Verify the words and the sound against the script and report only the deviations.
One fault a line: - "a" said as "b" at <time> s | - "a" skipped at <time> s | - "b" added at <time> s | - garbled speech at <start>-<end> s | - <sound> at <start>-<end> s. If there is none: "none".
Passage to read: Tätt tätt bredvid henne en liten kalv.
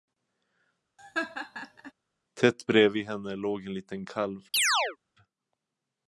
- laugh at 1.0-1.9 s
- "tätt" skipped at 2.7 s
- "låg" added at 3.4 s
- chirp at 4.5-5.0 s